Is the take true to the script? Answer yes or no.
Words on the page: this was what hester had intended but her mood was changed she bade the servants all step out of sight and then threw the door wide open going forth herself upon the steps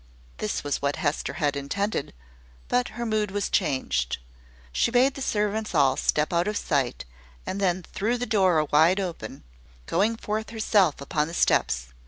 yes